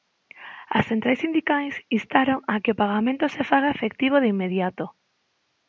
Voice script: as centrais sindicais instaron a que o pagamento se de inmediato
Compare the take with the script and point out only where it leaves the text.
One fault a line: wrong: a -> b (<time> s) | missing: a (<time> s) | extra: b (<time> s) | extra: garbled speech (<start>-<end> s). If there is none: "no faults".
extra: faga efectivo (3.5 s)